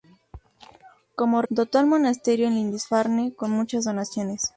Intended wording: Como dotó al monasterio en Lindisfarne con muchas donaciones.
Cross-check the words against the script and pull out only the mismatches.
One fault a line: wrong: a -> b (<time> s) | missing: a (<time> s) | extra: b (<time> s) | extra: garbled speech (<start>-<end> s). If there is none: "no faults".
no faults